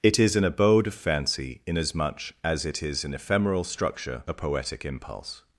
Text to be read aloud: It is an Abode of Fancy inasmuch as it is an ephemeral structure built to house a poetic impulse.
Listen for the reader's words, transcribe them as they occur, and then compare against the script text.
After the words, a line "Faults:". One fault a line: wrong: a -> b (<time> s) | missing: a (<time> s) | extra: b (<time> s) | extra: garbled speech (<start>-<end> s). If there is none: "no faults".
It is an Abode of Fancy inasmuch as it is an ephemeral structure a poetic impulse.
Faults:
missing: built to house (4.2 s)